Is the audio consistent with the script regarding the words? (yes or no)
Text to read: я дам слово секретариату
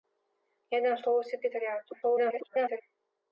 no